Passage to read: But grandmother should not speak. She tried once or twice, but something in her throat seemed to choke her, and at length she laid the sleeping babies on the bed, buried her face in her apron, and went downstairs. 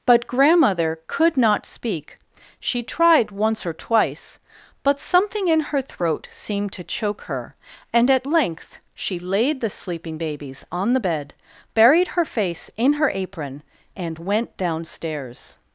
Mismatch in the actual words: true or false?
true